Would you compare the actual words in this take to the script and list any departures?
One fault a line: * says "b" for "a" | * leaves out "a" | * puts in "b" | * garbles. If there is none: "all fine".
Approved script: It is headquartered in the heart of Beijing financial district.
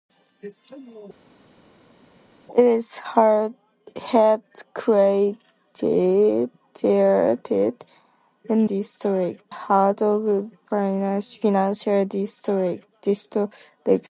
* says "district" for "the"
* leaves out "Beijing"